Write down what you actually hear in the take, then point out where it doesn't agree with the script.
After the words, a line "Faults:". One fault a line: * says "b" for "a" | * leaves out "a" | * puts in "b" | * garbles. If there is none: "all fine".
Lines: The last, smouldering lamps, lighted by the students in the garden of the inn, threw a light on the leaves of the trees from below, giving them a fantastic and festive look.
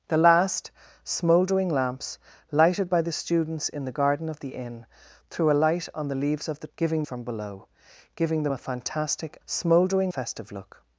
The last, smouldering lamps, lighted by the students in the garden of the inn, threw a light on the leaves of the giving from below, giving them a fantastic smouldering festive look.
Faults:
* says "giving" for "trees"
* says "smouldering" for "and"